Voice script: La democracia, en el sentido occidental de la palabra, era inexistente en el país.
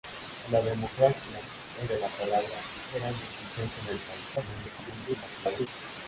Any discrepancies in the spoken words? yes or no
yes